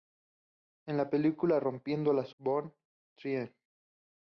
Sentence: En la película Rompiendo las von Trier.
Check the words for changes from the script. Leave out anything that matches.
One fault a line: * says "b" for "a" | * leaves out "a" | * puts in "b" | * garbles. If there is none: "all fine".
all fine